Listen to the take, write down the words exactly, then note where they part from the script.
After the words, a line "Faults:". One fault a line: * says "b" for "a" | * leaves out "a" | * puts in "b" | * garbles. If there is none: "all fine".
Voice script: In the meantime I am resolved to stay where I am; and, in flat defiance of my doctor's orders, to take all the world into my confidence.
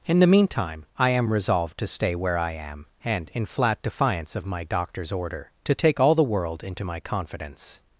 In the meantime I am resolved to stay where I am; and, in flat defiance of my doctor's order, to take all the world into my confidence.
Faults:
* says "order" for "orders"